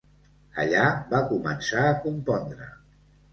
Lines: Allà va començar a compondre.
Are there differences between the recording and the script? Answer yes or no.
no